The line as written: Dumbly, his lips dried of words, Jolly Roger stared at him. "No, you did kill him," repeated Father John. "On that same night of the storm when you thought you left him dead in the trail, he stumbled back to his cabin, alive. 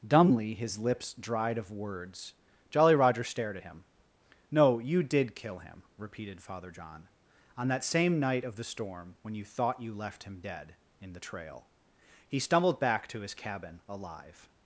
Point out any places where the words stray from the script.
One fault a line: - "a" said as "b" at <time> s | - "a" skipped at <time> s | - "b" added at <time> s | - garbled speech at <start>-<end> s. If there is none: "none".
none